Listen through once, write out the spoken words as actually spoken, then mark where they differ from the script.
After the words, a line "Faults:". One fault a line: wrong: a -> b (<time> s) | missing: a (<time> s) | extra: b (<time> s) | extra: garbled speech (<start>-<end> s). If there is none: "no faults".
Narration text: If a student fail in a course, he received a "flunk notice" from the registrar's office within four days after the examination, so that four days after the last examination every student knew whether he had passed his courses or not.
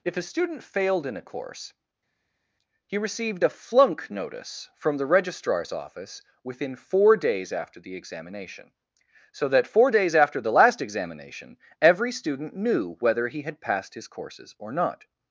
If a student failed in a course, he received a "flunk notice" from the registrar's office within four days after the examination, so that four days after the last examination every student knew whether he had passed his courses or not.
Faults:
wrong: fail -> failed (0.6 s)